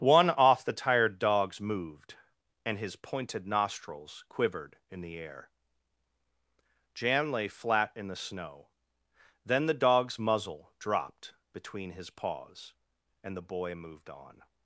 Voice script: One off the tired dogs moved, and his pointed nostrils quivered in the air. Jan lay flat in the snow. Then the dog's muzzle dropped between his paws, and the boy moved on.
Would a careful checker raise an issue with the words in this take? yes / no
no